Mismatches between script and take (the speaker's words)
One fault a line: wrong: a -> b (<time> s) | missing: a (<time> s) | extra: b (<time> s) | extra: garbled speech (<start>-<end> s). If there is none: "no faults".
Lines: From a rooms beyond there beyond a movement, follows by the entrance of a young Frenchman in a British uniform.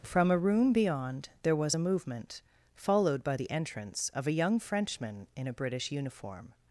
wrong: rooms -> room (0.4 s)
wrong: beyond -> was (1.6 s)
wrong: follows -> followed (2.7 s)